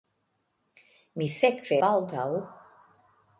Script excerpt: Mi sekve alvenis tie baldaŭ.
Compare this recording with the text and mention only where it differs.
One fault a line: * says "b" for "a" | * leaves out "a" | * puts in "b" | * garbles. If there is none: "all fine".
* leaves out "alvenis tie"